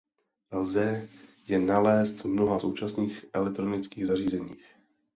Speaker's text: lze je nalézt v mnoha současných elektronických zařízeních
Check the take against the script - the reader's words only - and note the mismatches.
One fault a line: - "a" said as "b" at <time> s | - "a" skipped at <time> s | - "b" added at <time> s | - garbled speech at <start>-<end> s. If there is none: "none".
none